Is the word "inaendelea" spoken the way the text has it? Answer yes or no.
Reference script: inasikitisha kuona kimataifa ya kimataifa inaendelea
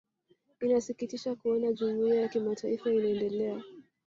yes